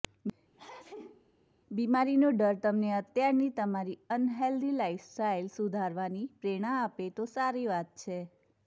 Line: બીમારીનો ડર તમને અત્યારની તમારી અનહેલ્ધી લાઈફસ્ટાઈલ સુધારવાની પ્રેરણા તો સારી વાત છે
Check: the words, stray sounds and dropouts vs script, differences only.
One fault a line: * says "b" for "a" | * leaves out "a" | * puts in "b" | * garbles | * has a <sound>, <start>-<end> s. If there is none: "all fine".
* has a sneeze, 0.5-1.3 s
* puts in "આપે"